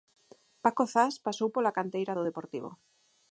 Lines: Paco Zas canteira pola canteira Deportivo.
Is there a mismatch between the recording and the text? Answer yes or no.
yes